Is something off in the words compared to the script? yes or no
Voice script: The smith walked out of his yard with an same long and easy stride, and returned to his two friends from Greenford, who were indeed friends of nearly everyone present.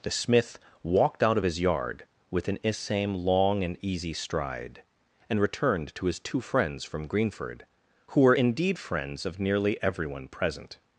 no